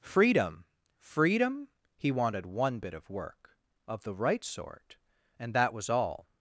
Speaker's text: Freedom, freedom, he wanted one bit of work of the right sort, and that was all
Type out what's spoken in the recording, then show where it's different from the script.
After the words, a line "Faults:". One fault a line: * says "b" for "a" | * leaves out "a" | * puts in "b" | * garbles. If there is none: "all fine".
Freedom, freedom, he wanted one bit of work of the right sort, and that was all
Faults:
all fine